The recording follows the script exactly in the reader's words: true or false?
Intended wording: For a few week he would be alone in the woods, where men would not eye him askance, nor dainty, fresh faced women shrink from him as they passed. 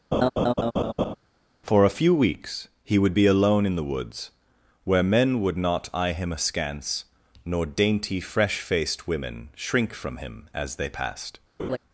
false